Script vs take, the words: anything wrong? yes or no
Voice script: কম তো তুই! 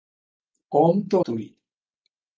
no